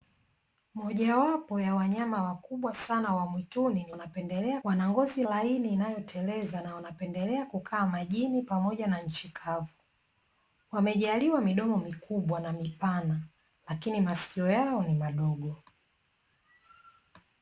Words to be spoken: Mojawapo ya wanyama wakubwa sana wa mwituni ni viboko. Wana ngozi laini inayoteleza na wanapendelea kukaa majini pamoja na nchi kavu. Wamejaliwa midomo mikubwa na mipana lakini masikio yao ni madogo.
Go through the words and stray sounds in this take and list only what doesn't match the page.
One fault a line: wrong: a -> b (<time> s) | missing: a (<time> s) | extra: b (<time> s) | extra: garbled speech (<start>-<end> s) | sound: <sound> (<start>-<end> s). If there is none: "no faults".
wrong: viboko -> wanapendelea (3.9 s)